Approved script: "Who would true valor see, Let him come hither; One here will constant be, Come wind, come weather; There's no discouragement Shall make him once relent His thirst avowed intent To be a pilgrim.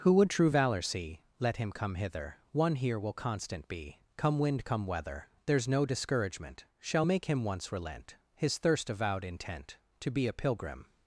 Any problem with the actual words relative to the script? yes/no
no